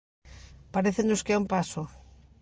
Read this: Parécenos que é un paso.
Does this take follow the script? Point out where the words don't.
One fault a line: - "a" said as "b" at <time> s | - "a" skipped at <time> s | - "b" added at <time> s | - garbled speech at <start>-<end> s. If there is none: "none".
none